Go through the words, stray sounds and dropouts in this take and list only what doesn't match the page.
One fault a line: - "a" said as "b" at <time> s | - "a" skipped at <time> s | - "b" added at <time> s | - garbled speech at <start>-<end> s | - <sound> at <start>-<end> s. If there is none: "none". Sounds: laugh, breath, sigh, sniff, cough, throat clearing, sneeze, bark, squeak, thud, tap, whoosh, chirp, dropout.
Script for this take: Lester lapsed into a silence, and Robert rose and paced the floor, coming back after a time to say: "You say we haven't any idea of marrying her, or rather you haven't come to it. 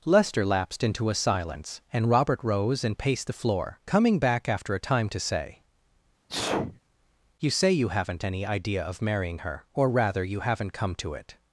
- sneeze at 6.3-6.8 s
- "we" said as "you" at 7.7 s